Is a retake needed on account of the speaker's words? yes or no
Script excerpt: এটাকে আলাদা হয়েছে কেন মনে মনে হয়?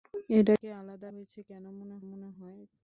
no